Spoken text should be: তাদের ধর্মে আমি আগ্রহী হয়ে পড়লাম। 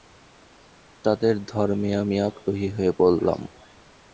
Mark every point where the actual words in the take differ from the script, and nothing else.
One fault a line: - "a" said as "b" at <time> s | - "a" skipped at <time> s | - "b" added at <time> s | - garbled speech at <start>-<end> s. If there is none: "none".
none